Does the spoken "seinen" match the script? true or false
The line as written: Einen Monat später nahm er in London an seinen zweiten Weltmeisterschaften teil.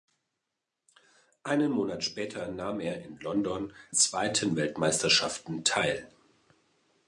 false